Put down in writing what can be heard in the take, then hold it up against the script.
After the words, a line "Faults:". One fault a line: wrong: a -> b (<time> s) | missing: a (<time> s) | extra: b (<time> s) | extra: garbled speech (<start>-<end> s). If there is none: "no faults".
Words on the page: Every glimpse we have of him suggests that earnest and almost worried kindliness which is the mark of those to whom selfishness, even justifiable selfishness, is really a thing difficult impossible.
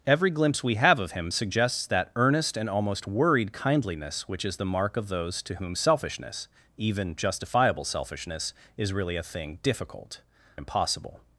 Every glimpse we have of him suggests that earnest and almost worried kindliness which is the mark of those to whom selfishness, even justifiable selfishness, is really a thing difficult impossible.
Faults:
no faults